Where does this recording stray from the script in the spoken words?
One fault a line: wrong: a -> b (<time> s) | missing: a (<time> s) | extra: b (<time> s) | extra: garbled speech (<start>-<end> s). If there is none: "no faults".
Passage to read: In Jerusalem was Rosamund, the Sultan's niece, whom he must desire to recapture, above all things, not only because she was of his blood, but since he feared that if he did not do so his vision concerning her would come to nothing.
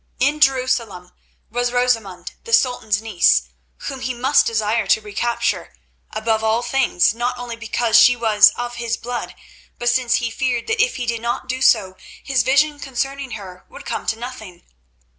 no faults